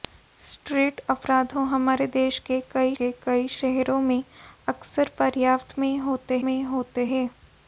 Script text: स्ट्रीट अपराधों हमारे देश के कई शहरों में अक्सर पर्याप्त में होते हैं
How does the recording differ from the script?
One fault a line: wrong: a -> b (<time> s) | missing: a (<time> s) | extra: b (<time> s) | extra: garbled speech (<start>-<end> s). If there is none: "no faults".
extra: के कई (3.0 s)
extra: में होते (6.4 s)